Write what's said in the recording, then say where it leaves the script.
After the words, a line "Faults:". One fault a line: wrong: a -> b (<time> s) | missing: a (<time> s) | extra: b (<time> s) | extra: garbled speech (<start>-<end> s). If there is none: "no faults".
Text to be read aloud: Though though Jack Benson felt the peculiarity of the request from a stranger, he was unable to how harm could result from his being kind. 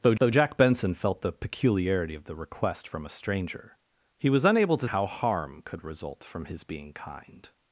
Though though Jack Benson felt the peculiarity of the request from a stranger, he was unable to how harm could result from his being kind.
Faults:
no faults